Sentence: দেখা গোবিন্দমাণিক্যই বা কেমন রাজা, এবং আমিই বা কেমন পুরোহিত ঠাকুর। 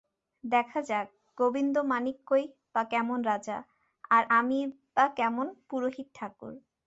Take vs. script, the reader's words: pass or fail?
fail